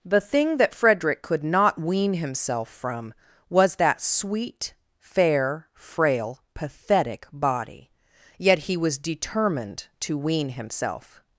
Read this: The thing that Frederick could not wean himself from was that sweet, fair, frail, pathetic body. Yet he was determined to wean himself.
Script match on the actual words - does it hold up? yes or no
yes